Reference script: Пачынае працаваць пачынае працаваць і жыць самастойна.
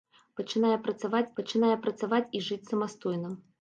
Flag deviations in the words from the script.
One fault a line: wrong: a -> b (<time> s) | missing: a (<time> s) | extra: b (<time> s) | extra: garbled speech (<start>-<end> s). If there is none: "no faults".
no faults